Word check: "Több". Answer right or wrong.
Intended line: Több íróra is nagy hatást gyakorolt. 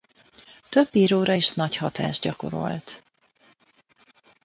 right